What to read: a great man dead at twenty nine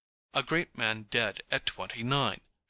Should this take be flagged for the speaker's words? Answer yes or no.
no